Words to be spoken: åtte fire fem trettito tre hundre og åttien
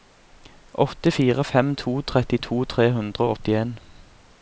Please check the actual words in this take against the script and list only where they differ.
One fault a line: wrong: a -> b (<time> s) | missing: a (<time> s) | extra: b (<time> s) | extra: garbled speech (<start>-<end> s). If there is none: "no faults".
extra: to (1.7 s)